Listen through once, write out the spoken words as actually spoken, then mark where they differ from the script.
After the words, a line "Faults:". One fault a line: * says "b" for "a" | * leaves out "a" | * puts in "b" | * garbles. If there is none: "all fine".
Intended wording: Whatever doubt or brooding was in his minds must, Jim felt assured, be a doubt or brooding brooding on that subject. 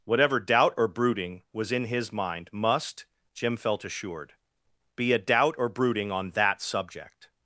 Whatever doubt or brooding was in his mind must, Jim felt assured, be a doubt or brooding on that subject.
Faults:
* says "mind" for "minds"
* leaves out "brooding"